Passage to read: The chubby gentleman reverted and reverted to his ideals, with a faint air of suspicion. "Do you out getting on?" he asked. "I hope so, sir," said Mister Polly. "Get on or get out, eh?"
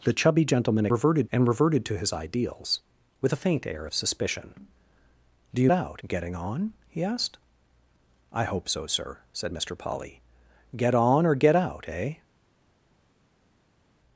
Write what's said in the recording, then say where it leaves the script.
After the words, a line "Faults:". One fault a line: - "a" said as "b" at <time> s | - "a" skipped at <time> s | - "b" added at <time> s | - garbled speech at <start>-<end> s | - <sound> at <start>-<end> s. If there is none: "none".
The chubby gentleman reverted and reverted to his ideals, with a faint air of suspicion. "Do you out getting on?" he asked. "I hope so, sir," said Mister Polly. "Get on or get out, eh?"
Faults:
none